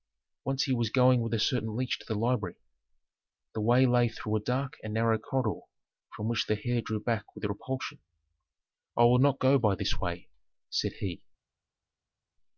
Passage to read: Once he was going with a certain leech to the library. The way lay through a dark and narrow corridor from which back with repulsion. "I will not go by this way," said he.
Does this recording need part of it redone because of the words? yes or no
yes